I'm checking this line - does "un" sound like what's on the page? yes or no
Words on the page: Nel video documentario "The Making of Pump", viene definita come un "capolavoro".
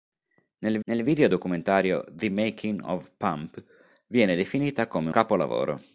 no